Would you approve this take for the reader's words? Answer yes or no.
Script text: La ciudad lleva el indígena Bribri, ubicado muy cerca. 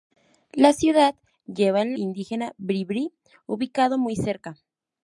yes